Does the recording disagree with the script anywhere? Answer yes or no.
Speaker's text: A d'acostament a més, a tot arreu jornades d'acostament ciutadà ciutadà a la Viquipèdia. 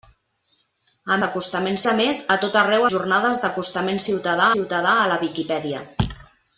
no